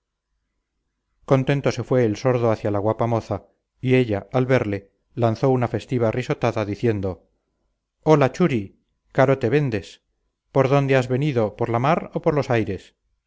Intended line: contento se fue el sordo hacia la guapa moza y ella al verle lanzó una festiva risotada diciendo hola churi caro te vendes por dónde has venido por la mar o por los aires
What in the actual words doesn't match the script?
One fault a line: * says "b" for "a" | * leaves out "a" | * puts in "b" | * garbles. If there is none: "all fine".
all fine